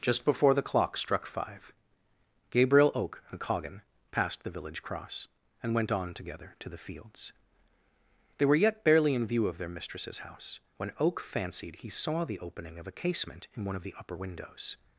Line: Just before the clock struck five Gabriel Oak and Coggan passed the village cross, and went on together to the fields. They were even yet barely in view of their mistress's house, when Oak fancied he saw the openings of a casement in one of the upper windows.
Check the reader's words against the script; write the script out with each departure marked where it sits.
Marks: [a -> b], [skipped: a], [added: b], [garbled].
Just before the clock struck five Gabriel Oak and Coggan passed the village cross, and went on together to the fields. They were [skipped: even] yet barely in view of their mistress's house, when Oak fancied he saw the [openings -> opening] of a casement in one of the upper windows.